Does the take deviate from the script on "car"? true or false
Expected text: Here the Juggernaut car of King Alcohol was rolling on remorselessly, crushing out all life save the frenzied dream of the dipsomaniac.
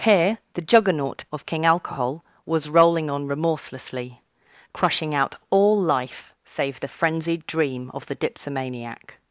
true